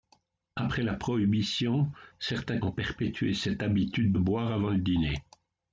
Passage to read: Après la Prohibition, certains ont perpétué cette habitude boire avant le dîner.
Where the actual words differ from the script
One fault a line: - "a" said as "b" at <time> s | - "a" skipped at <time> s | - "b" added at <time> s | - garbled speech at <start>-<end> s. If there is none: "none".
none